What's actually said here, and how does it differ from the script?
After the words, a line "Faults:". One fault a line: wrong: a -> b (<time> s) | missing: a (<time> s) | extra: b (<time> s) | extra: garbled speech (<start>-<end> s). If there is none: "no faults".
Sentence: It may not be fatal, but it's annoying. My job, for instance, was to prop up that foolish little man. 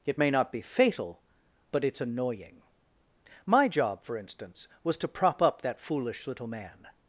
It may not be fatal, but it's annoying. My job, for instance, was to prop up that foolish little man.
Faults:
no faults